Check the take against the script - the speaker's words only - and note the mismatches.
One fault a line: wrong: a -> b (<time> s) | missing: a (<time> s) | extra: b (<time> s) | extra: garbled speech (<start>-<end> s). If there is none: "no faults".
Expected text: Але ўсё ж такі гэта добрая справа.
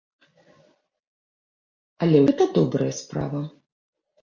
missing: ўсё ж такі (2.2 s)